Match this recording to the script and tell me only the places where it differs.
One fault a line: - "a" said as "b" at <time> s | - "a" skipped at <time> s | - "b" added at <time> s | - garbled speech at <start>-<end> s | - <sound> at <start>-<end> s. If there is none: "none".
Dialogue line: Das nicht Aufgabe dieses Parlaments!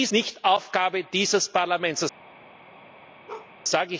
- bark at 3.3-3.5 s